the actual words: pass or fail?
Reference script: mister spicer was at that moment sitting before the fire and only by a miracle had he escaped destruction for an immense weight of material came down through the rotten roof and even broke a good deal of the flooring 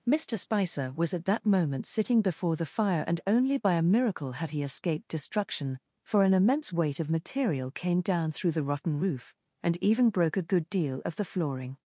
pass